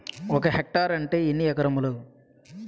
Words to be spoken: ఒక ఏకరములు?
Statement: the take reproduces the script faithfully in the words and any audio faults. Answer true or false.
false